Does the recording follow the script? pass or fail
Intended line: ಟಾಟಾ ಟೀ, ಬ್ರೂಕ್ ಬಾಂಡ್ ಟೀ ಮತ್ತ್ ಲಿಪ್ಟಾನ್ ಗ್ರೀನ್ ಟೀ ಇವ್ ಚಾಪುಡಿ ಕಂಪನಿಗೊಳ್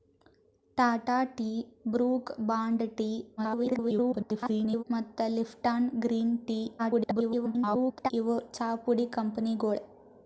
fail